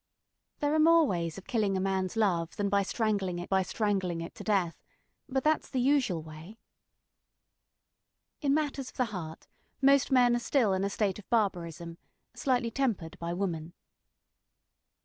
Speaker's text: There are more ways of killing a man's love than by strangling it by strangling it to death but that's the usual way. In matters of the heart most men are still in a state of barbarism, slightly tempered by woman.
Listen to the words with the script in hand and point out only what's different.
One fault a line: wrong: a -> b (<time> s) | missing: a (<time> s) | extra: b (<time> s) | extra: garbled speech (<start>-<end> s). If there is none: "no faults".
no faults